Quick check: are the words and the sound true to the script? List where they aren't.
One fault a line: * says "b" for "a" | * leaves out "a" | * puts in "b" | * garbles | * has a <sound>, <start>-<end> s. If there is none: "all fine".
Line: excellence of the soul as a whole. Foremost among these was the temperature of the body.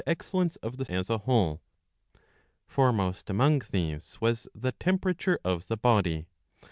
* leaves out "soul"